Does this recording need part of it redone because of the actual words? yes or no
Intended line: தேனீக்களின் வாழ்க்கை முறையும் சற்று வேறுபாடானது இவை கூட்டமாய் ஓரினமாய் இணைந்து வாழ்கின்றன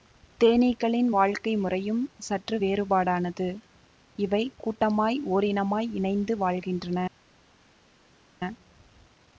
no